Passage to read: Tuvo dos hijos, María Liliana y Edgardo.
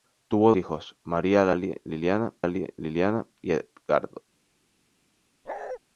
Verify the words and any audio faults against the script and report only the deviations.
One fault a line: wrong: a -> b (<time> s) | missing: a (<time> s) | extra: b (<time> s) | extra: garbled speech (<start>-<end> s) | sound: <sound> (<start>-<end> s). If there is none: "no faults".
missing: dos (0.5 s)
extra: Liliana (2.5 s)
sound: bark (5.4-5.8 s)